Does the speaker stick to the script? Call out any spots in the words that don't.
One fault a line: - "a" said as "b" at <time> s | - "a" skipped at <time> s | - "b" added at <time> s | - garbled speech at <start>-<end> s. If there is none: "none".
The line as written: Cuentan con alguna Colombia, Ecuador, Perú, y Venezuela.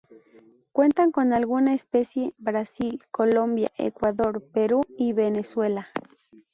- "especie Brasil" added at 1.8 s